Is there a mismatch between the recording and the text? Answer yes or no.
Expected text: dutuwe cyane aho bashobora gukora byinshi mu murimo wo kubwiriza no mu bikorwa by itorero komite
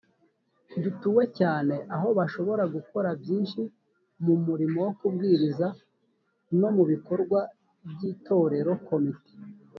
no